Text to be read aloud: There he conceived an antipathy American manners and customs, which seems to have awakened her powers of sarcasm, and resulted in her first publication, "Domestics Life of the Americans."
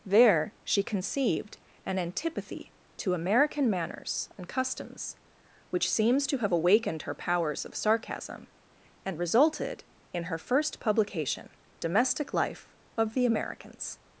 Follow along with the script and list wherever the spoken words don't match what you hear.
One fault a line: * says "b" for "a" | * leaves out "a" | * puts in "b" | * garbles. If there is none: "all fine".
* says "she" for "he"
* puts in "to"
* says "Domestic" for "Domestics"